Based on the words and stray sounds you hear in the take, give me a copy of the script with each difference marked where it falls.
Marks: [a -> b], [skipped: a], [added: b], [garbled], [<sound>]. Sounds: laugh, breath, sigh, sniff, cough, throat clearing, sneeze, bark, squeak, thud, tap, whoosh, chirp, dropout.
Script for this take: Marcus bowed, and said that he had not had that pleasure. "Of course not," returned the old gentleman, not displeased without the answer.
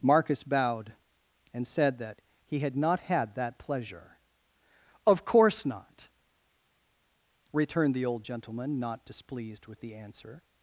Marcus bowed, and said that he had not had that pleasure. "Of course not," returned the old gentleman, not displeased [without -> with] the answer.